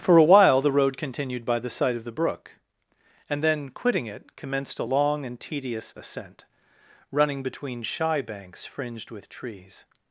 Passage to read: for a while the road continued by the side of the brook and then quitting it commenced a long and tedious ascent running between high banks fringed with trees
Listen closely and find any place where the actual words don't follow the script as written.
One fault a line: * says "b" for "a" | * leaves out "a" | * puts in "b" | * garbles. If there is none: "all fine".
* says "shy" for "high"